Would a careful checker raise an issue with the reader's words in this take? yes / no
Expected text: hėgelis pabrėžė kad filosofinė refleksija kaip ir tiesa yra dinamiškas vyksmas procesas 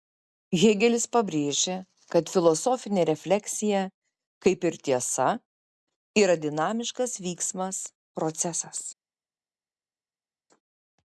no